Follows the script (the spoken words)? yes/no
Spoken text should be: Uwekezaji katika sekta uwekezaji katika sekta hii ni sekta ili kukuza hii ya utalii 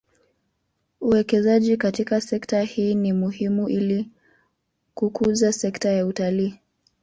no